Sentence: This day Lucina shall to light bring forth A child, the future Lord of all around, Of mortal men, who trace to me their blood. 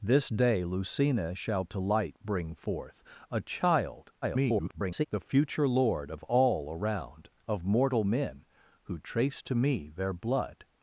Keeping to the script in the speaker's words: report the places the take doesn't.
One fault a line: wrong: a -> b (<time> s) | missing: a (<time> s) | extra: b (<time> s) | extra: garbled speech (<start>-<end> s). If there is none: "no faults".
extra: garbled speech (4.2-5.1 s)